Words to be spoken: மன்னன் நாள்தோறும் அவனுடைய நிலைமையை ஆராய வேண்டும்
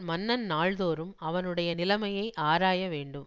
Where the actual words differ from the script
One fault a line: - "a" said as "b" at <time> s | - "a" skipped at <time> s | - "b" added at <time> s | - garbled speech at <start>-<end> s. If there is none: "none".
none